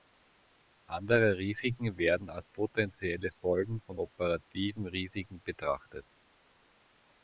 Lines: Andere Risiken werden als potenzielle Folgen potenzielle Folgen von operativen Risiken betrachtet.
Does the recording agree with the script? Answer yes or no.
no